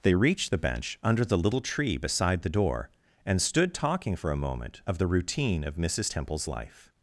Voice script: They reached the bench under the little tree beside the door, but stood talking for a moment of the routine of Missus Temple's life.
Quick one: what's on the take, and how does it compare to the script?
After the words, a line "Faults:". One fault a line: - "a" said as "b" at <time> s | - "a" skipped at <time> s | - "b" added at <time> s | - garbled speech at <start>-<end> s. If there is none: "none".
They reached the bench under the little tree beside the door, and stood talking for a moment of the routine of Missus Temple's life.
Faults:
- "but" said as "and" at 3.2 s